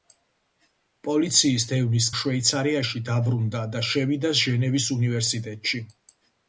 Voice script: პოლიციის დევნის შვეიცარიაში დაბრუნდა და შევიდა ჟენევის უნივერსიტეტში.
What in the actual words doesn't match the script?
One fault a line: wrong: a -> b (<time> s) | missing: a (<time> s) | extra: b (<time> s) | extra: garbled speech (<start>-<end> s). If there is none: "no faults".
no faults